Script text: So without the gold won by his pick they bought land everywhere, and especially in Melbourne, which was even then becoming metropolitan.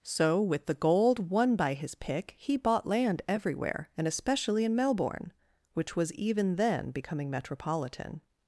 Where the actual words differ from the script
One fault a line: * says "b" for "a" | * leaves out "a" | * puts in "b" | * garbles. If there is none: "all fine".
* says "with" for "without"
* says "he" for "they"